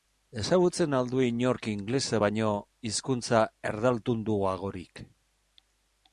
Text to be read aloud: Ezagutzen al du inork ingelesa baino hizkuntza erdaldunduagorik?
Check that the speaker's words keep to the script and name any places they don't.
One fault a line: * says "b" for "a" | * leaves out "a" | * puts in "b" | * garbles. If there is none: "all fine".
all fine